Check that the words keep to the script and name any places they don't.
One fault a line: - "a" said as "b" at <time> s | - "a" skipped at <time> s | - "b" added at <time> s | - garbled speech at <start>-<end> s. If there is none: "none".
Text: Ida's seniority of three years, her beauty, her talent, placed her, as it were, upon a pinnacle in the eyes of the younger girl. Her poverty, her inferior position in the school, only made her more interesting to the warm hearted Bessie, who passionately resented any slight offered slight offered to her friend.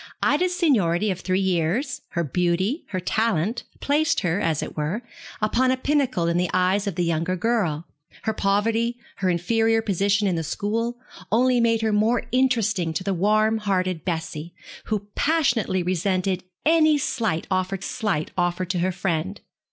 none